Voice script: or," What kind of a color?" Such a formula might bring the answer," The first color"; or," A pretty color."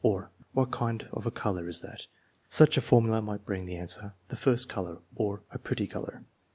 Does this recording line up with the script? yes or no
no